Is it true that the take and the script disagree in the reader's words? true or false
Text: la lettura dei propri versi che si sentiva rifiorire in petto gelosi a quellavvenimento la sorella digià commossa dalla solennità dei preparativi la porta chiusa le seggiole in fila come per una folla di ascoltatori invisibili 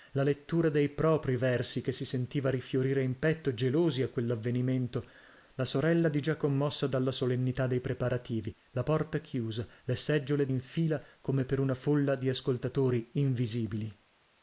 false